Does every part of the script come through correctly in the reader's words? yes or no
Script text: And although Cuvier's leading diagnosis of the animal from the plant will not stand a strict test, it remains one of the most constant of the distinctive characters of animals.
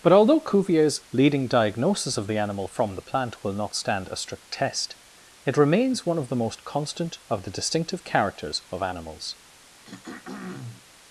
no